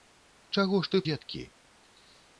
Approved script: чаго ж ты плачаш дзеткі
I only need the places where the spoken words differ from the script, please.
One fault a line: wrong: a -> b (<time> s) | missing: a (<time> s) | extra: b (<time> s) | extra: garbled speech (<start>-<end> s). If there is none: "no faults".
missing: плачаш (1.0 s)